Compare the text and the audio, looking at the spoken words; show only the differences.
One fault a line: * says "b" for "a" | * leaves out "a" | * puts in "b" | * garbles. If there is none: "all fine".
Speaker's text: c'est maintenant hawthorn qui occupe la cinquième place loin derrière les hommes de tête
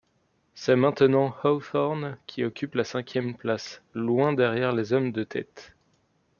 all fine